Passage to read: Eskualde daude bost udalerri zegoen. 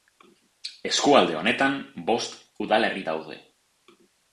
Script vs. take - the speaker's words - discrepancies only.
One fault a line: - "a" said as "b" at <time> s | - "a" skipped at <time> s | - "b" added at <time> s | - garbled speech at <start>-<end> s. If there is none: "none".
- "daude" said as "honetan" at 1.4 s
- "zegoen" said as "daude" at 3.1 s